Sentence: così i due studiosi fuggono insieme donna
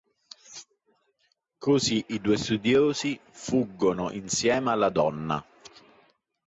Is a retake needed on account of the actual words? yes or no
yes